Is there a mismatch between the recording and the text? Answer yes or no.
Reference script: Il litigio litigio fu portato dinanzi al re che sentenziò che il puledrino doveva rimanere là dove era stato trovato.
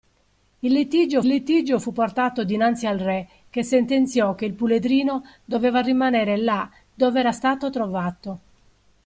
no